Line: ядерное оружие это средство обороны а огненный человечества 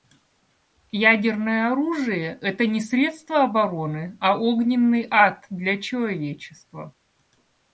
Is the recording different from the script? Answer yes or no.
yes